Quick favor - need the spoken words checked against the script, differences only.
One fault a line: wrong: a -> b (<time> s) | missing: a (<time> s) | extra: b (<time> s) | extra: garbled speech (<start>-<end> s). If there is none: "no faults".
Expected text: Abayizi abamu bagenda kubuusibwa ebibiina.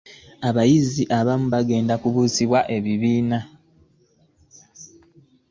no faults